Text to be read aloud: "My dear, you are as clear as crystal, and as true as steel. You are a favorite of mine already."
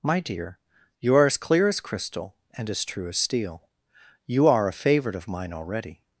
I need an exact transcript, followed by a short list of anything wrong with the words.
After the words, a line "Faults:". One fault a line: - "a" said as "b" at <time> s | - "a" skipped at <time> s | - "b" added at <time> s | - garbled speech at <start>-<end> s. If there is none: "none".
"My dear, you are as clear as crystal, and as true as steel. You are a favorite of mine already."
Faults:
none